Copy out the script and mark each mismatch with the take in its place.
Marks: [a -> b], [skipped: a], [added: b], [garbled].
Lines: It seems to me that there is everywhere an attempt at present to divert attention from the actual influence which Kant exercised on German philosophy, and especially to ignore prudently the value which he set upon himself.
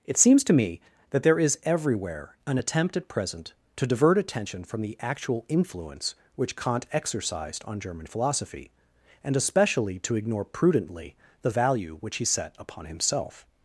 It seems to me that there is everywhere an attempt at present to divert attention from the actual influence which Kant exercised on German philosophy, and especially to ignore prudently the value which he set upon himself.